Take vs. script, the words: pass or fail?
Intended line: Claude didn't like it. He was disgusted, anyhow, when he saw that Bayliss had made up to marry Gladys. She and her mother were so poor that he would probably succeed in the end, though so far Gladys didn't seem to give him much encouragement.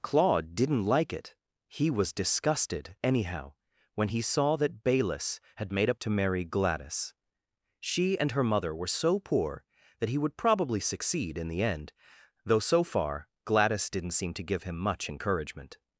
pass